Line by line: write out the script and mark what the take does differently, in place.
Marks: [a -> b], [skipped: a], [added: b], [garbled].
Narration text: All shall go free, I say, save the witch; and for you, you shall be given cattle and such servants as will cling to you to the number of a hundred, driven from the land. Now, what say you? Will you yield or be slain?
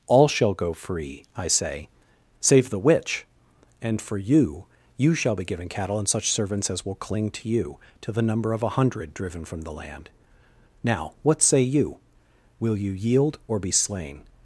All shall go free, I say, save the witch; and for you, you shall be given cattle and such servants as will cling to you to the number of a hundred, driven from the land. Now, what say you? Will you yield or be slain?